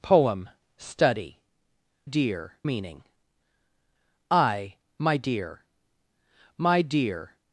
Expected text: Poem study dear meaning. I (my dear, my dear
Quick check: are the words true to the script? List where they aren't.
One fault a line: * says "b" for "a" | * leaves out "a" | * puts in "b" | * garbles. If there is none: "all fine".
all fine